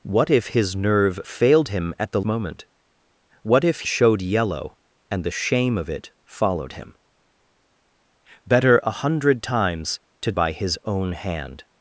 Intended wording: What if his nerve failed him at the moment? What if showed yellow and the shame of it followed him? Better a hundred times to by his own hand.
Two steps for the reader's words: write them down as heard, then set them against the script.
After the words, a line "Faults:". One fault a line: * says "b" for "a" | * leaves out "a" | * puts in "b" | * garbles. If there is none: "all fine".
What if his nerve failed him at the moment? What if showed yellow and the shame of it followed him? Better a hundred times to by his own hand.
Faults:
all fine